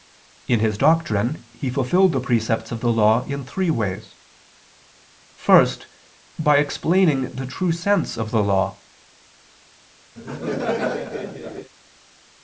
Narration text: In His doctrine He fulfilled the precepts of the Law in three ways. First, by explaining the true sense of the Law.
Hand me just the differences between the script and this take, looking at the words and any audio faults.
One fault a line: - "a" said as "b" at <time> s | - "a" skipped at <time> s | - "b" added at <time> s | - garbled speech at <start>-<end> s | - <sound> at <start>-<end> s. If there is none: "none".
- laugh at 10.2-11.7 s